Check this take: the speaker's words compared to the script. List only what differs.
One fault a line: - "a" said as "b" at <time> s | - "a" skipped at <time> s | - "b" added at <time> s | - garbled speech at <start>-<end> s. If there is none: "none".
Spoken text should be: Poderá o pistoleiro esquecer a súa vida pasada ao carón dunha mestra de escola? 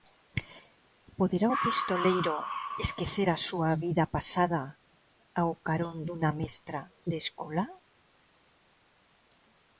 none